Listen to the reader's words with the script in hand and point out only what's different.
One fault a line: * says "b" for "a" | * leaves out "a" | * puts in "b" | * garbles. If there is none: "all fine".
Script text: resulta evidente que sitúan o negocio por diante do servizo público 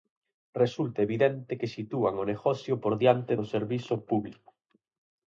all fine